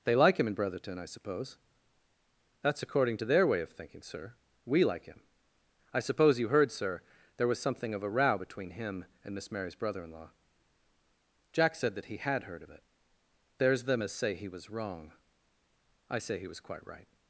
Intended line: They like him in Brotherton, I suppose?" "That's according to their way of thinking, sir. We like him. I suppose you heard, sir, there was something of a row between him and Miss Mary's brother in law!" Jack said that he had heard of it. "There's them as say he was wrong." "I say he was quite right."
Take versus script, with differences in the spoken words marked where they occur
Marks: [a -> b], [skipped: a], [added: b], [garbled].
They like him in Brotherton, I suppose?" "That's according to their way of thinking, sir. We like him. I suppose you heard, sir, there was something of a row between him and Miss Mary's brother in law!" Jack said that he had heard of it. "There's them as say he was wrong." "I say he was quite right."